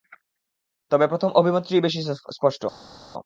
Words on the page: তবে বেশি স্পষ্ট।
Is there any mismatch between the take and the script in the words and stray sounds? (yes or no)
yes